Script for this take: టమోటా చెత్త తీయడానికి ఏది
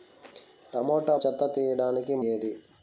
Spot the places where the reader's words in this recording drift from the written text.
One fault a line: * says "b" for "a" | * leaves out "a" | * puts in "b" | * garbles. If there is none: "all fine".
all fine